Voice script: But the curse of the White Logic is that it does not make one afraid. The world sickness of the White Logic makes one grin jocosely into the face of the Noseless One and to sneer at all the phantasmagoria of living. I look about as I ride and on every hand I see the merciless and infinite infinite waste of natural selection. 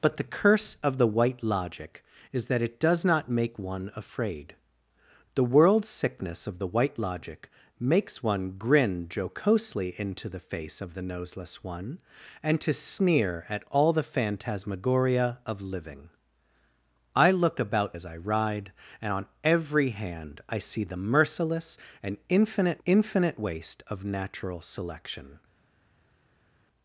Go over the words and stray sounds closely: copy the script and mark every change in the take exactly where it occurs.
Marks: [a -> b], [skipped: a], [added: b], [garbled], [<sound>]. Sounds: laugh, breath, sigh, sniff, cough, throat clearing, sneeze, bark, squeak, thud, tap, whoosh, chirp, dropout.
But the curse of the White Logic is that it does not make one afraid. The world sickness of the White Logic makes one grin jocosely into the face of the Noseless One and to sneer at all the phantasmagoria of living. I look about as I ride and on every hand I see the merciless and infinite infinite waste of natural selection.